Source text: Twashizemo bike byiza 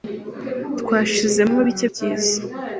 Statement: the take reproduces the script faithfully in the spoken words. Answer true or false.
true